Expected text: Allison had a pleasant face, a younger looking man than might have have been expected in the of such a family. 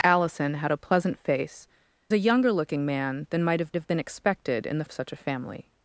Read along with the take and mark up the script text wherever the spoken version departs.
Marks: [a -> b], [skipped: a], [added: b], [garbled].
Allison had a pleasant face, a younger looking man than might have have been expected in the of such a family.